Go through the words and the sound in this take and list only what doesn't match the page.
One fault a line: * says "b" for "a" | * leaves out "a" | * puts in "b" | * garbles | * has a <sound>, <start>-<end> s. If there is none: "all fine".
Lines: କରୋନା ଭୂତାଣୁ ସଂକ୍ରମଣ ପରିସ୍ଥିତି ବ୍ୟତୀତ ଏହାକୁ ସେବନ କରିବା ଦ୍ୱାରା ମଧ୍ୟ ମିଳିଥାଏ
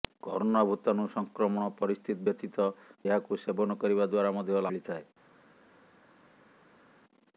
all fine